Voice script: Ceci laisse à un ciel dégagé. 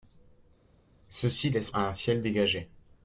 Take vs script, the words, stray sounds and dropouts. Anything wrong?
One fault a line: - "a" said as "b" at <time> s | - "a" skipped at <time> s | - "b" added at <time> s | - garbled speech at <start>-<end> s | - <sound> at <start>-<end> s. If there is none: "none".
none